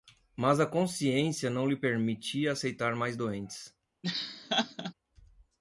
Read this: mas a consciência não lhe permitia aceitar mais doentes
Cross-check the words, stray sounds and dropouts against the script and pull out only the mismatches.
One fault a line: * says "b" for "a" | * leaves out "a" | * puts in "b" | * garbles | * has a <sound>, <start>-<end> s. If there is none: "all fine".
* has a laugh, 4.0-4.9 s